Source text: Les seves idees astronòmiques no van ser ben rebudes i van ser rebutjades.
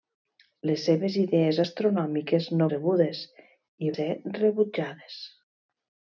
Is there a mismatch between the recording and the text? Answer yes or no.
yes